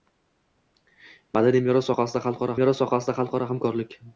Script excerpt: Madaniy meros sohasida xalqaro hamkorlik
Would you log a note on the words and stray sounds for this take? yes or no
yes